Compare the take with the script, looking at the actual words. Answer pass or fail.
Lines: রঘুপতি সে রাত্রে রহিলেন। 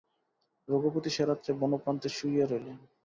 fail